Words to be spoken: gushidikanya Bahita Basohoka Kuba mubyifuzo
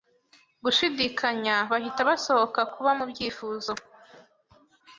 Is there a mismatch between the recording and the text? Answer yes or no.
no